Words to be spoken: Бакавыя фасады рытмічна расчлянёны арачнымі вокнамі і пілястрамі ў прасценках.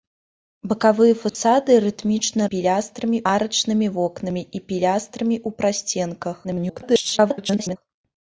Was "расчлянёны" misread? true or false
true